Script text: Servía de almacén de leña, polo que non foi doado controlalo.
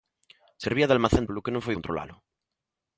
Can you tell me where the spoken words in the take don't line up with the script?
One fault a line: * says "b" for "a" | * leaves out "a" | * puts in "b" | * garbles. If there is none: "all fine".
* leaves out "de leña"
* leaves out "doado"